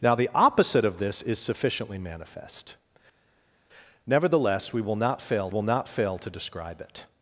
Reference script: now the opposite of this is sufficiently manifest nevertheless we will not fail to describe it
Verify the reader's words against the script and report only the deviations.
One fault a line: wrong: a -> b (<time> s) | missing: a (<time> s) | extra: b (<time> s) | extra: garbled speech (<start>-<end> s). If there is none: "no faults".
extra: will not fail (5.5 s)